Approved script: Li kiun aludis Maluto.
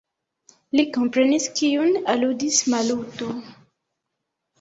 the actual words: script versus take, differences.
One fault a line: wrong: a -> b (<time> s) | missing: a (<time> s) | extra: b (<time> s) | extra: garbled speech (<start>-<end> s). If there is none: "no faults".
extra: komprenis (0.9 s)